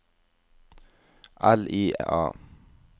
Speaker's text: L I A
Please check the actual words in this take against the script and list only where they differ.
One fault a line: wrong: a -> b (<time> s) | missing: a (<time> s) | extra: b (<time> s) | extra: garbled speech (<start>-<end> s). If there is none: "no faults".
no faults